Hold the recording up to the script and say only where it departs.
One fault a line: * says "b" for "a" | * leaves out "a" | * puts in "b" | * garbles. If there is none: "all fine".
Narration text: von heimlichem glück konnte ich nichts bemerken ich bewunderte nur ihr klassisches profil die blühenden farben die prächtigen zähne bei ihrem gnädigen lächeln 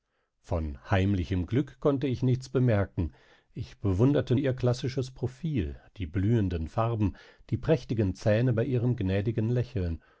* leaves out "nur"